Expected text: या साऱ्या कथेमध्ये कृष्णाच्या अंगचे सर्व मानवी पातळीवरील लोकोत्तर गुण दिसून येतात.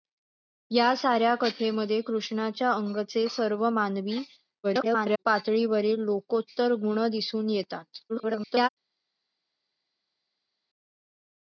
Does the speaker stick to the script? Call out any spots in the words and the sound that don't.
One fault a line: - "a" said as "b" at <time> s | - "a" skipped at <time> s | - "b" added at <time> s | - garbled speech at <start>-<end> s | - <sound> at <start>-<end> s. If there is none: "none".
- garbled speech at 4.6-5.2 s
- garbled speech at 8.1-8.7 s